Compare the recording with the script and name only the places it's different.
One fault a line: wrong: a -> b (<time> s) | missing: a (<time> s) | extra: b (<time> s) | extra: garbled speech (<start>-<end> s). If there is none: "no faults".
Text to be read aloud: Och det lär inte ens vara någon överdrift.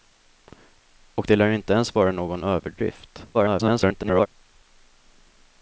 extra: garbled speech (3.3-4.3 s)